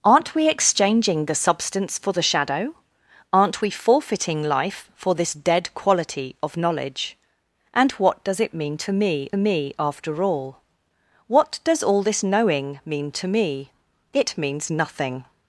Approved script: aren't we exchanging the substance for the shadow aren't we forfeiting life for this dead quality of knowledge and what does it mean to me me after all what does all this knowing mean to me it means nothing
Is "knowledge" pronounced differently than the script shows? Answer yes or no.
no